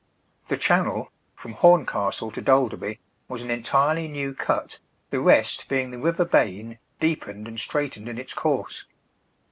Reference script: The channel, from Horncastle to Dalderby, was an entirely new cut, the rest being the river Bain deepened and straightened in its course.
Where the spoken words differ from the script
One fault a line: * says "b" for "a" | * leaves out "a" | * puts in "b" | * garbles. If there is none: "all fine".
all fine